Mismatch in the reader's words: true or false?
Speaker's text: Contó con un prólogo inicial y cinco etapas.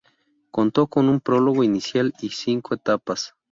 false